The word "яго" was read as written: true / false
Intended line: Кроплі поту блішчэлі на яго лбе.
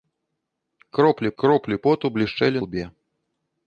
false